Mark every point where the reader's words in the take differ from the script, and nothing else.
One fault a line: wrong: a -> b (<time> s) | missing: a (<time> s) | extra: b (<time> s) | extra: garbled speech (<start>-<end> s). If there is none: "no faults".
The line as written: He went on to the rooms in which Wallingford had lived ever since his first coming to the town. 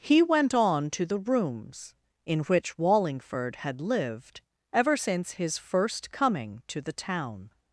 no faults